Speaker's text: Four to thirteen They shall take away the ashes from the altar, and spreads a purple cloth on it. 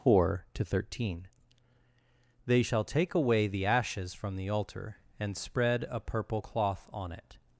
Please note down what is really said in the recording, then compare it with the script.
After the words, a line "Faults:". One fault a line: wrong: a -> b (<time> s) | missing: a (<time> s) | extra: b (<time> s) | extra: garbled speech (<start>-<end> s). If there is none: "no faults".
Four to thirteen They shall take away the ashes from the altar, and spread a purple cloth on it.
Faults:
wrong: spreads -> spread (5.4 s)